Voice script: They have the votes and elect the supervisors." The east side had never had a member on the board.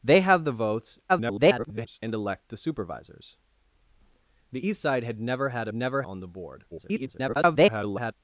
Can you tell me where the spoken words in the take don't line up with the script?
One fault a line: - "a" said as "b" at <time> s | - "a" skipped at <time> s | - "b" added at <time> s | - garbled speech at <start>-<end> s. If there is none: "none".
- garbled speech at 1.1-2.0 s
- "member" said as "never" at 5.7 s
- garbled speech at 6.7-8.1 s